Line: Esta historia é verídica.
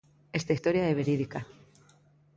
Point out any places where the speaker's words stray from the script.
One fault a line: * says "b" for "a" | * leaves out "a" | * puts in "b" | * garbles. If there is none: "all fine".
all fine